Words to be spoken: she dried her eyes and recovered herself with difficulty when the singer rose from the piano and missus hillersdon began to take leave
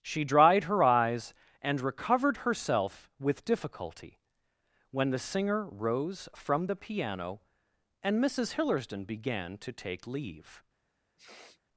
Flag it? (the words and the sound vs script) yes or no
yes